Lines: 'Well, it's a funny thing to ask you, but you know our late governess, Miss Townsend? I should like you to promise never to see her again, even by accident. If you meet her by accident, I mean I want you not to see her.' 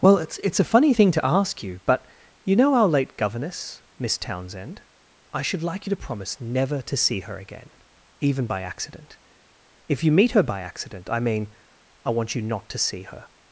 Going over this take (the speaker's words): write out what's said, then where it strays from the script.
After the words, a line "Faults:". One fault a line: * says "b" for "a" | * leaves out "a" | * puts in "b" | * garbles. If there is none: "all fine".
'Well, it's it's a funny thing to ask you, but you know our late governess, Miss Townsend? I should like you to promise never to see her again, even by accident. If you meet her by accident, I mean I want you not to see her.'
Faults:
* puts in "it's"